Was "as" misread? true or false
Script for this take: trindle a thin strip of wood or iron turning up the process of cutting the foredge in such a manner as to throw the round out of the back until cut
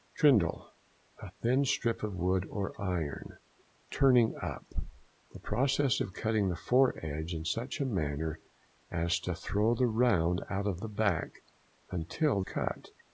false